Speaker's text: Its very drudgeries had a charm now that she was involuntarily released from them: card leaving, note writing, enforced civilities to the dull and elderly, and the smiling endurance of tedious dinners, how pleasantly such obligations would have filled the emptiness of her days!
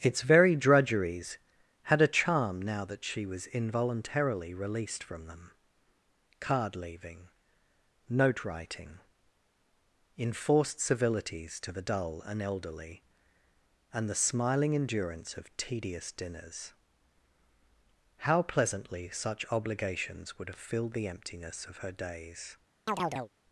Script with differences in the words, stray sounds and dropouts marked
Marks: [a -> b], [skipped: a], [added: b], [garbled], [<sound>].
Its very drudgeries had a charm now that she was involuntarily released from them: card leaving, note writing, enforced civilities to the dull and elderly, and the smiling endurance of tedious dinners, how pleasantly such obligations would have filled the emptiness of her days! [chirp]